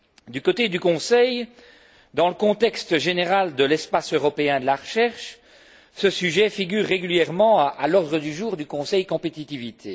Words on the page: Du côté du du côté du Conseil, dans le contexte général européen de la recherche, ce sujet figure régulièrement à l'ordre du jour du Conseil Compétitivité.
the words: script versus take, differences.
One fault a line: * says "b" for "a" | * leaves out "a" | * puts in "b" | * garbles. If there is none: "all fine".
* leaves out "du côté du"
* puts in "de l'espace"